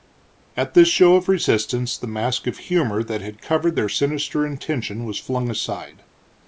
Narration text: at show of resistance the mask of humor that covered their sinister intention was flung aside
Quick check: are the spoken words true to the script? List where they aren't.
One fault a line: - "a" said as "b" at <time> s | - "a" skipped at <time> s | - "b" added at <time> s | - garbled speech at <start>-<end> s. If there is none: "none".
- "this" added at 0.7 s
- "had" added at 3.2 s